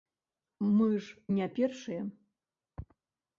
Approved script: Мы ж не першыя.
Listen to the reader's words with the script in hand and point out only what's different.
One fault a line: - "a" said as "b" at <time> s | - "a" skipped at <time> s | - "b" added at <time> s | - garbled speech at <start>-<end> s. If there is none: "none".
none